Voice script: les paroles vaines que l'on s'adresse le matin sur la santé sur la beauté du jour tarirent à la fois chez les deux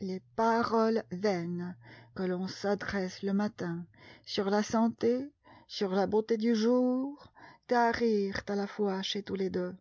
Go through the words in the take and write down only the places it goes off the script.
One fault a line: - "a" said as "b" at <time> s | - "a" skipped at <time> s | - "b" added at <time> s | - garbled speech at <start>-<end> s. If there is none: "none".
- "tous" added at 9.2 s